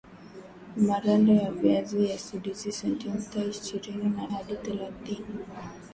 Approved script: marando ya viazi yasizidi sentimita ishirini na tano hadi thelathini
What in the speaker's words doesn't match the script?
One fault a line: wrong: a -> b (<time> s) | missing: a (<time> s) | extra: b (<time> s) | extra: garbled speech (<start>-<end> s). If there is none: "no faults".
missing: tano (4.3 s)